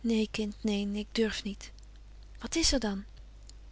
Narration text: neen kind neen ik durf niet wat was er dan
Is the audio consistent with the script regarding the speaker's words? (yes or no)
no